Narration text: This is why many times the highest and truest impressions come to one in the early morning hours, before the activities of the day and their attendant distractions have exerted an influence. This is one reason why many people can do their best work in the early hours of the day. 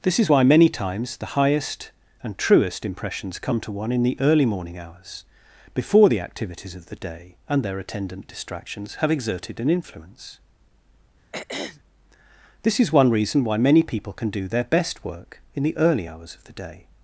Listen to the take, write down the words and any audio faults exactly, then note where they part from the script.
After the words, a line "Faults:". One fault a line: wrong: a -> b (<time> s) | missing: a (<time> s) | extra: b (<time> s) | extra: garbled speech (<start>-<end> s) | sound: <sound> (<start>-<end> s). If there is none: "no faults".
This is why many times the highest and truest impressions come to one in the early morning hours, before the activities of the day and their attendant distractions have exerted an influence. This is one reason why many people can do their best work in the early hours of the day.
Faults:
sound: throat clearing (11.3-11.8 s)